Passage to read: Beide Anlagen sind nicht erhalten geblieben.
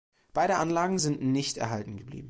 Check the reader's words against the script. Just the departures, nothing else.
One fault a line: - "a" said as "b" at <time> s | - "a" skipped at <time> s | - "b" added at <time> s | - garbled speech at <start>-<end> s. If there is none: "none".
none